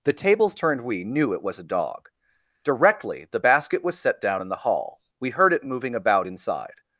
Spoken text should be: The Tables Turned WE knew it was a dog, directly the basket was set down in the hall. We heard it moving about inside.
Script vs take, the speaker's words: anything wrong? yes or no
no